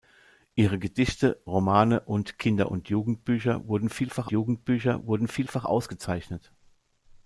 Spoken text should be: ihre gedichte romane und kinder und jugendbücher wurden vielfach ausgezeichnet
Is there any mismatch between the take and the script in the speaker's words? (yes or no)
yes